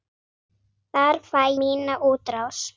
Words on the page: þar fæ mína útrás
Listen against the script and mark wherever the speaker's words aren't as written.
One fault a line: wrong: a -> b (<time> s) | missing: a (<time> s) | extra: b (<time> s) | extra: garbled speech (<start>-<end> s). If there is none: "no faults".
no faults